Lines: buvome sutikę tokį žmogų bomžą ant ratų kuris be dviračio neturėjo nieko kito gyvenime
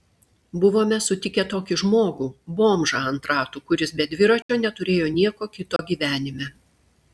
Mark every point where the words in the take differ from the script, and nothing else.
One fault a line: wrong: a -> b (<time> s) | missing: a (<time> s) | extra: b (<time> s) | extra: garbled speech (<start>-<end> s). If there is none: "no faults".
no faults